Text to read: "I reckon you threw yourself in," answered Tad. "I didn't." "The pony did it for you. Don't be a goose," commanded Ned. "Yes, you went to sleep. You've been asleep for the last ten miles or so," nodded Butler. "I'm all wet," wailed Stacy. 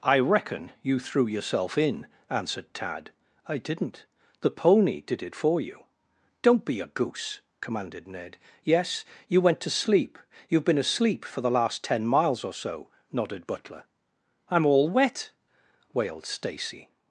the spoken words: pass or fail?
pass